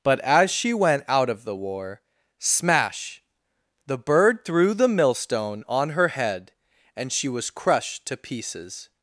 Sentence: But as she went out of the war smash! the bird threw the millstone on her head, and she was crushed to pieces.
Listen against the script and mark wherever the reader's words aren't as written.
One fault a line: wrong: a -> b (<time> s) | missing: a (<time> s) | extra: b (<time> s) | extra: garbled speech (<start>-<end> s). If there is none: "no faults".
no faults